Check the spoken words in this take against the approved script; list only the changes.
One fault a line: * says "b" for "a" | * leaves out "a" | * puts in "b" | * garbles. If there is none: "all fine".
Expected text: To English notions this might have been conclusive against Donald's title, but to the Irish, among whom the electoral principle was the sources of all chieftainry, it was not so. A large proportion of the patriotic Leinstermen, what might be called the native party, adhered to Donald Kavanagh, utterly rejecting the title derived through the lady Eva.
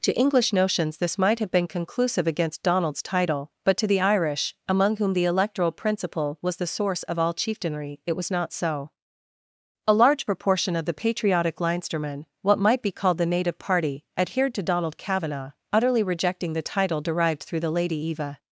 * says "source" for "sources"